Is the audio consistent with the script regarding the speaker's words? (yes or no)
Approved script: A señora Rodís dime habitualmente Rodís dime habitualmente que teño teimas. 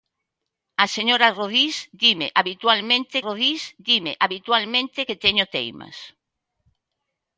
yes